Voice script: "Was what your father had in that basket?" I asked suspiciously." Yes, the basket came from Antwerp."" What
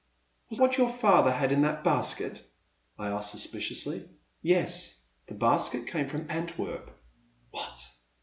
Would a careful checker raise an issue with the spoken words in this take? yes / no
no